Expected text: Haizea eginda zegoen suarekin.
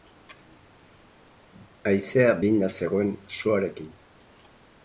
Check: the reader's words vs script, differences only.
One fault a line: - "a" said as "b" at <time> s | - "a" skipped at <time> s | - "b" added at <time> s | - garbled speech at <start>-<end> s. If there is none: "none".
none